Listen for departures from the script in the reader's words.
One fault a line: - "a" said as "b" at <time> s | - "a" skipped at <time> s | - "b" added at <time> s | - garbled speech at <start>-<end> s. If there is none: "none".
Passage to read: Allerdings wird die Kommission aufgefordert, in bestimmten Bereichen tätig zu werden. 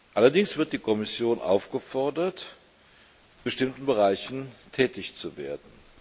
- "in" skipped at 2.5 s